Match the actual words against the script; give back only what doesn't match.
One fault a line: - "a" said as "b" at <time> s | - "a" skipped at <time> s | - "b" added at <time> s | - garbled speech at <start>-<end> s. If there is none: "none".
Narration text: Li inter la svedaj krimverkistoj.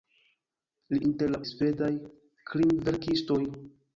none